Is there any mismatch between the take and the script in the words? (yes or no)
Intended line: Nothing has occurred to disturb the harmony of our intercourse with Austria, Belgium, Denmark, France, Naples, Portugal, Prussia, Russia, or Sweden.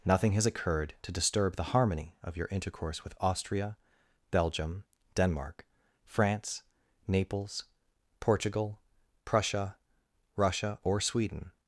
yes